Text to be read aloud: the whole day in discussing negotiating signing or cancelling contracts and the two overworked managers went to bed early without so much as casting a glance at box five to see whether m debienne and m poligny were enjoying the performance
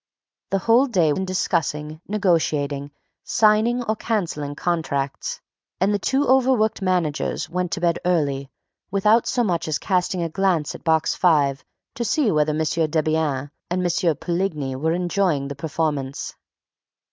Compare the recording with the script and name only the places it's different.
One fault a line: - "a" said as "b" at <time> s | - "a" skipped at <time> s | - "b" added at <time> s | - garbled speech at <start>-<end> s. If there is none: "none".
none